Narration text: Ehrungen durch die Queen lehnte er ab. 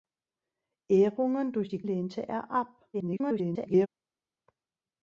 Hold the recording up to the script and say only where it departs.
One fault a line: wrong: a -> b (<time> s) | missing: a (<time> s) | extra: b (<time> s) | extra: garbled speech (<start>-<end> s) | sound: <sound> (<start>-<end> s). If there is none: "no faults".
missing: Queen (1.8 s)
extra: garbled speech (2.9-3.9 s)